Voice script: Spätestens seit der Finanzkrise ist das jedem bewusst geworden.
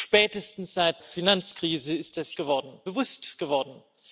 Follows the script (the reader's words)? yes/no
no